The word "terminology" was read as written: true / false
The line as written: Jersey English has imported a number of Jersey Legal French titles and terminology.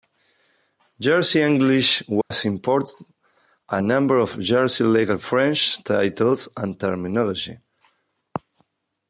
true